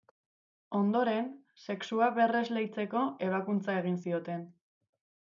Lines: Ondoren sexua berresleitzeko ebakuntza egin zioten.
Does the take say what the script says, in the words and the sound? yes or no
yes